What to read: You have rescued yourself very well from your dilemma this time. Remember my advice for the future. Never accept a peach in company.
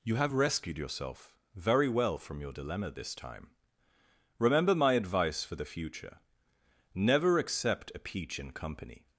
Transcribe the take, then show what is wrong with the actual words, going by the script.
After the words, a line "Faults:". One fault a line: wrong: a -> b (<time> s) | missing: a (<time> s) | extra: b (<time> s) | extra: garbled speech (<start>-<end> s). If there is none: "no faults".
You have rescued yourself very well from your dilemma this time. Remember my advice for the future. Never accept a peach in company.
Faults:
no faults